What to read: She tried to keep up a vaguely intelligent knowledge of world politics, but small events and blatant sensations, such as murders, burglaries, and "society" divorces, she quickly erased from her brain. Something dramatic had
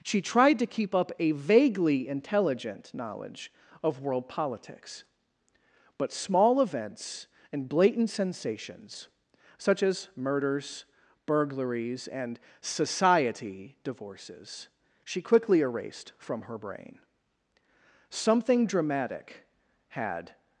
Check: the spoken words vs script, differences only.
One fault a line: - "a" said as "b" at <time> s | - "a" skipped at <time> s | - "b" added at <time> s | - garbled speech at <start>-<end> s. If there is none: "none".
none